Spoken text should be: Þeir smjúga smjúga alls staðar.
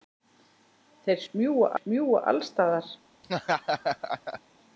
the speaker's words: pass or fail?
pass